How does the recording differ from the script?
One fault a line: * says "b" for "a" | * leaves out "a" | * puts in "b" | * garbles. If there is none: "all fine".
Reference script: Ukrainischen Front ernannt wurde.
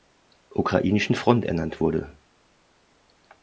all fine